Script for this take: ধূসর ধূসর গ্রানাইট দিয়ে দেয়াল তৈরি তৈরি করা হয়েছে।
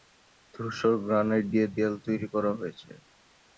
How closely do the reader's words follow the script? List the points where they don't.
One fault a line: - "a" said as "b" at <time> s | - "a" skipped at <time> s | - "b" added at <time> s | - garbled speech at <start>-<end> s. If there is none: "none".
- "ধূসর" skipped at 0.9 s
- "তৈরি" skipped at 2.3 s